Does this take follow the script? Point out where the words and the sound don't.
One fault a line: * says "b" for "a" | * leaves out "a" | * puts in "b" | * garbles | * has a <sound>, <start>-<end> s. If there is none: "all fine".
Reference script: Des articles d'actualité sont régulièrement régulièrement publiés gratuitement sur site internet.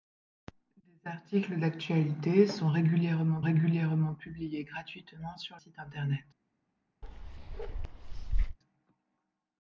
* has a bark, 7.0-8.6 s